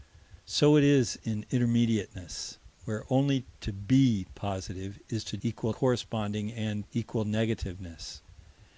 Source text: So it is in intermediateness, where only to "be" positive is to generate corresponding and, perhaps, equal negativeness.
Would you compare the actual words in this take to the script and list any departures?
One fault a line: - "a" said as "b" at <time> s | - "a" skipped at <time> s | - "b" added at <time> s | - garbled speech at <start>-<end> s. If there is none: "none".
- "generate" said as "equal" at 5.4 s
- "perhaps" skipped at 6.8 s